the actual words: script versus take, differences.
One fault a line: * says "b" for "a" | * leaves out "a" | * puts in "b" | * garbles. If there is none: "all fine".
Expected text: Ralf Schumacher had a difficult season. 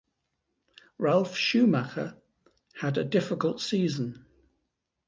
all fine